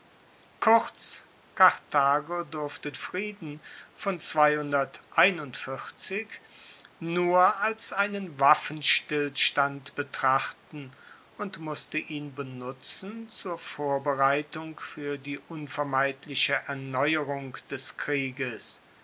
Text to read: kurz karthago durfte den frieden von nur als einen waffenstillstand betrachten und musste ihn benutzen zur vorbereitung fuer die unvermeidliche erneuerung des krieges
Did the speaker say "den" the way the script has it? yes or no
no